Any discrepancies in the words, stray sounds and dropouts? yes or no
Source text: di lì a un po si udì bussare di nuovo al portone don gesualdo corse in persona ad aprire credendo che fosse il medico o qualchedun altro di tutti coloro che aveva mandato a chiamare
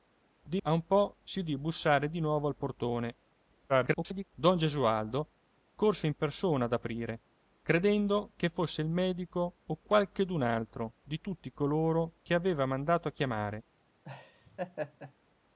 yes